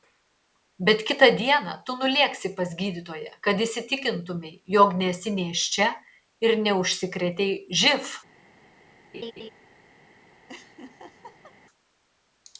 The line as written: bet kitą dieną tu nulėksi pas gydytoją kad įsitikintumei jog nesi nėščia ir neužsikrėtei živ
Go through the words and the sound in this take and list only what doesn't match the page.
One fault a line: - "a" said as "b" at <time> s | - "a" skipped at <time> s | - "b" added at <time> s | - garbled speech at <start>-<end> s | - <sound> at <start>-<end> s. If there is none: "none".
- laugh at 9.1-9.5 s
- laugh at 10.5-11.6 s